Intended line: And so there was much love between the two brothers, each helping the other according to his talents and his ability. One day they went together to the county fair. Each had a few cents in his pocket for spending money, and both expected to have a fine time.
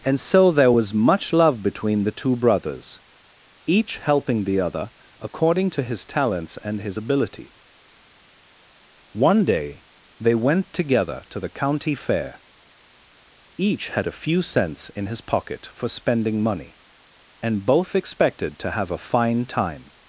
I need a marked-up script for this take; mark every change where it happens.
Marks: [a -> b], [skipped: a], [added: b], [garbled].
And so there was much love between the two brothers, each helping the other according to his talents and his ability. One day they went together to the county fair. Each had a few cents in his pocket for spending money, and both expected to have a fine time.